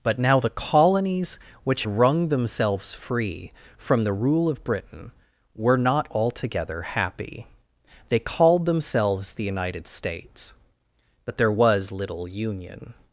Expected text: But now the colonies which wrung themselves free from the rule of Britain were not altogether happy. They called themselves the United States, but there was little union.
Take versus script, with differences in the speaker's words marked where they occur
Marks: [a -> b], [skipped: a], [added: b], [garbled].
But now the colonies which wrung themselves free from the rule of Britain were not altogether happy. They called themselves the United States, but there was little union.